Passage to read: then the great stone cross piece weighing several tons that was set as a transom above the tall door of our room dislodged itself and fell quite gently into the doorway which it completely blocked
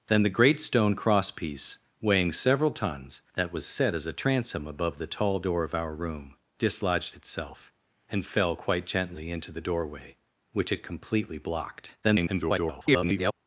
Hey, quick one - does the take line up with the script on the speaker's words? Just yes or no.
no